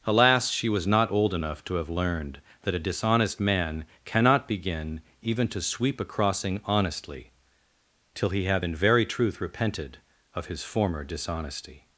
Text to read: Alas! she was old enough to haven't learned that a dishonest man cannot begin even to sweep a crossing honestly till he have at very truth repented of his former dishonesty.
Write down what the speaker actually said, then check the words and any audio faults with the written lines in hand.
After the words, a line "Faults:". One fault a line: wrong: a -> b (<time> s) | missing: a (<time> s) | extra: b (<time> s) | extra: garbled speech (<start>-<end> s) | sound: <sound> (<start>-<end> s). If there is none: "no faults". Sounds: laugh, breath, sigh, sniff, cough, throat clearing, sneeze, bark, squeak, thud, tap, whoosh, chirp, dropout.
Alas! she was not old enough to have learned that a dishonest man cannot begin even to sweep a crossing honestly till he have in very truth repented of his former dishonesty.
Faults:
extra: not (0.9 s)
wrong: haven't -> have (1.8 s)
wrong: at -> in (8.6 s)